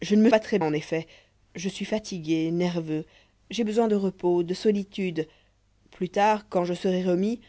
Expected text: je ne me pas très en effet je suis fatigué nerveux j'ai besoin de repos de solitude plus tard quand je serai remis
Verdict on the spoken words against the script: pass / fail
pass